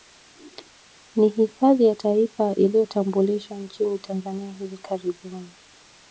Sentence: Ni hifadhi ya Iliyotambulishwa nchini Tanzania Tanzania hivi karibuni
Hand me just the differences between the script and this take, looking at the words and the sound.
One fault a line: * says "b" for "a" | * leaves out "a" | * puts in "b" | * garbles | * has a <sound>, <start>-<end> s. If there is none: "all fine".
* puts in "Taifa"
* leaves out "Tanzania"